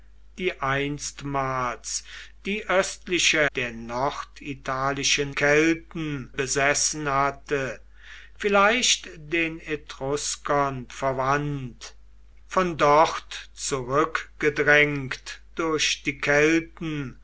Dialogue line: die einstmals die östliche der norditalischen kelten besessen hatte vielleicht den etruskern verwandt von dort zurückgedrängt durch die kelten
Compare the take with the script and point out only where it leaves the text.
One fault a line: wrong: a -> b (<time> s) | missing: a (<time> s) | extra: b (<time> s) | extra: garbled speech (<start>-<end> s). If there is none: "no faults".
no faults